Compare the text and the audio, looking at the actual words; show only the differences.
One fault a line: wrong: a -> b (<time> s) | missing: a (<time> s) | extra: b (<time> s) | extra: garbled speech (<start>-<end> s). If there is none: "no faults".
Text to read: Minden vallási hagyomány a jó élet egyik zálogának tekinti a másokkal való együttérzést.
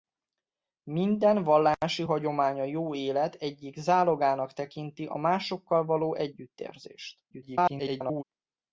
extra: garbled speech (7.3-8.2 s)